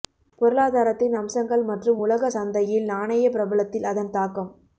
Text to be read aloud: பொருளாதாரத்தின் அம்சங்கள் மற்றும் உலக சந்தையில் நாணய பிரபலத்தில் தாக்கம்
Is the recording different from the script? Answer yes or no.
yes